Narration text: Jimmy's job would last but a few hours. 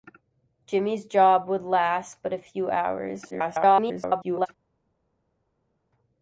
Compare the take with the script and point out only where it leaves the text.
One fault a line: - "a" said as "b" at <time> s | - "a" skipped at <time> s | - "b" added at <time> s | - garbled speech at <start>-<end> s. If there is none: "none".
- garbled speech at 3.3-4.5 s